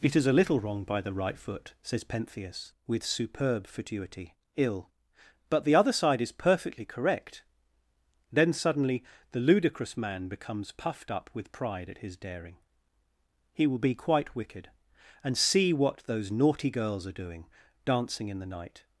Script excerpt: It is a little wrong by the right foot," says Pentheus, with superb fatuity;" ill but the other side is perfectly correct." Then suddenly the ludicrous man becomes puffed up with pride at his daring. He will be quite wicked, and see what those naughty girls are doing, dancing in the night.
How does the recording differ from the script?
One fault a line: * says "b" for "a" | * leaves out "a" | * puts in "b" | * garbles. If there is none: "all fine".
all fine